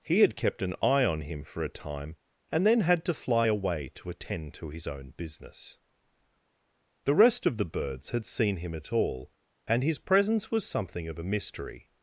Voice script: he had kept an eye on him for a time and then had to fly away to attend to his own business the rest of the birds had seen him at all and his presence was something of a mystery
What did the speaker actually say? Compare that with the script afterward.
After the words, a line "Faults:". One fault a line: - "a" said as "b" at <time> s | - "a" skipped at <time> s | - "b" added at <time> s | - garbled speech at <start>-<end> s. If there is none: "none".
he had kept an eye on him for a time and then had to fly away to attend to his own business the rest of the birds had seen him at all and his presence was something of a mystery
Faults:
none